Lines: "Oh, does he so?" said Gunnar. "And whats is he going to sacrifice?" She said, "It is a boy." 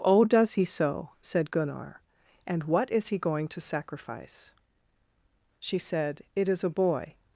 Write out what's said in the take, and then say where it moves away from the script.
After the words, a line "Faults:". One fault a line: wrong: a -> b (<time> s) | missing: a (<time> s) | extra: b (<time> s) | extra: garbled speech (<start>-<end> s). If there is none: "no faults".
"Oh, does he so?" said Gunnar. "And what is he going to sacrifice?" She said, "It is a boy."
Faults:
wrong: whats -> what (2.6 s)